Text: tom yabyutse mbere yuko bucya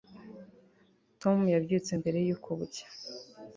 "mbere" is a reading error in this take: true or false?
false